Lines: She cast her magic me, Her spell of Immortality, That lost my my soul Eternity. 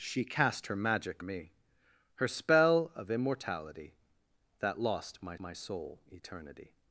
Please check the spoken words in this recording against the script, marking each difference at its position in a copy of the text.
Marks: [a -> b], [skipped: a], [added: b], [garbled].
She cast her magic me, Her spell of Immortality, That lost my my soul Eternity.